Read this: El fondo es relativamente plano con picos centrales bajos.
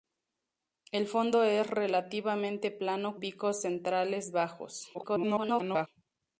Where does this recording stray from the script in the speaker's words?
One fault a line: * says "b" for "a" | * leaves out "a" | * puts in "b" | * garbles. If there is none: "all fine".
* leaves out "con"
* garbles